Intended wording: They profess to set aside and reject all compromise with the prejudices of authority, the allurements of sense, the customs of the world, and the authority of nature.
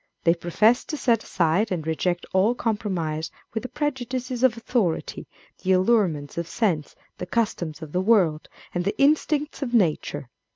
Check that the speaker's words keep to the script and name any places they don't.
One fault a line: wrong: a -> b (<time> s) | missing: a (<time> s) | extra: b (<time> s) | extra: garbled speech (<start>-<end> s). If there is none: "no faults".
wrong: authority -> instincts (9.0 s)